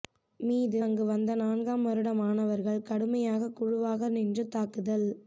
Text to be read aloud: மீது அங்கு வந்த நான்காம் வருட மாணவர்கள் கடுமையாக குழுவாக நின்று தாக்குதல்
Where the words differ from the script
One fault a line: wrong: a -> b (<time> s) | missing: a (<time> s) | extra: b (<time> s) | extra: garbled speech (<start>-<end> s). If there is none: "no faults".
no faults